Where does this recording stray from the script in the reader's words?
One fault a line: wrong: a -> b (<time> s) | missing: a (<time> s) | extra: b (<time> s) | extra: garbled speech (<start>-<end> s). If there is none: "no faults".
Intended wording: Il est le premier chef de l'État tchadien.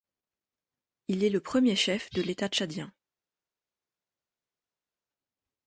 no faults